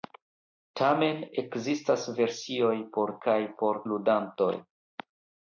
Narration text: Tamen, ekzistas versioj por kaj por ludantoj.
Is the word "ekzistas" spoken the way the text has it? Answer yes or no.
yes